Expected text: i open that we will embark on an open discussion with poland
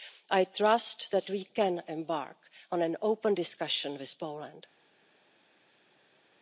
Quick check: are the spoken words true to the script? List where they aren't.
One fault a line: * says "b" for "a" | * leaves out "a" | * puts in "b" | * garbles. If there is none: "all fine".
* says "trust" for "open"
* says "can" for "will"